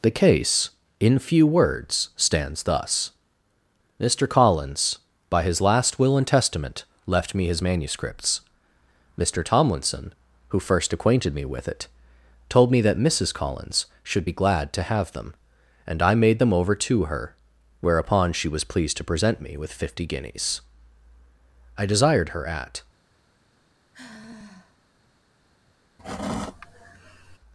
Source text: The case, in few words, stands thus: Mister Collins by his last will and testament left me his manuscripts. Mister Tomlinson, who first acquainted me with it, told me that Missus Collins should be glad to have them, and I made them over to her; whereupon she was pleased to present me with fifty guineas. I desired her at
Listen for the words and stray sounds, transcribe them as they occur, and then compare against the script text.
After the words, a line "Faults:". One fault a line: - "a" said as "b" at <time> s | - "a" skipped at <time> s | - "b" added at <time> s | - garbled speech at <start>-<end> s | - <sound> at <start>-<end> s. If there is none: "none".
The case, in few words, stands thus: Mister Collins by his last will and testament left me his manuscripts. Mister Tomlinson, who first acquainted me with it, told me that Missus Collins should be glad to have them, and I made them over to her; whereupon she was pleased to present me with fifty guineas. I desired her at
Faults:
- sigh at 23.9-24.8 s
- sigh at 26.0-27.4 s